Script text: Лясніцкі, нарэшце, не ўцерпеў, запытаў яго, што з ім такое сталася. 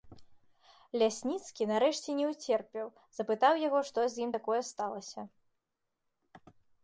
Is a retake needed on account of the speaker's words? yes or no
no